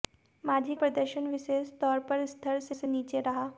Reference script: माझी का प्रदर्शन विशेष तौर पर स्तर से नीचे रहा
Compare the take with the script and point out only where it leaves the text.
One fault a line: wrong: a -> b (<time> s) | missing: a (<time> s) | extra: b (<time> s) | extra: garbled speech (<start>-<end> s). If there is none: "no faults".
missing: का (0.8 s)
extra: से (2.7 s)